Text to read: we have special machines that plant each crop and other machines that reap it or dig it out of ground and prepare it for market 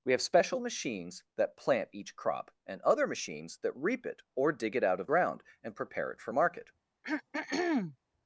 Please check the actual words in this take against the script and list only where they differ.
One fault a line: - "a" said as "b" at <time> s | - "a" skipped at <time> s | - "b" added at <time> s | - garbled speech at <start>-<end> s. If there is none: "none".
none